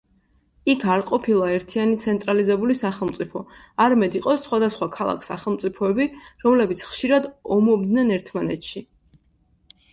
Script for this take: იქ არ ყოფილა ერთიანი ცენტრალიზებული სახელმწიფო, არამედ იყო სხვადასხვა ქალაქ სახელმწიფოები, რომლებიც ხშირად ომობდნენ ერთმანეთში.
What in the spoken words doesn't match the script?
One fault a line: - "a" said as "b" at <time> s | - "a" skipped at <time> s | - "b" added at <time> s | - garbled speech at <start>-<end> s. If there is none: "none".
none